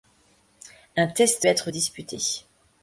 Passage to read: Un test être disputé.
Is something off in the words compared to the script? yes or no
no